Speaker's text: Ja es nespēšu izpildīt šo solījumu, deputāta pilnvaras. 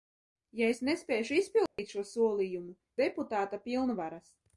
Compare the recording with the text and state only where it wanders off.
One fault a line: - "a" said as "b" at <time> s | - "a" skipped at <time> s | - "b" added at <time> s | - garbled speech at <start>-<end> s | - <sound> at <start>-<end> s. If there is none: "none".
- dropout at 1.7-1.8 s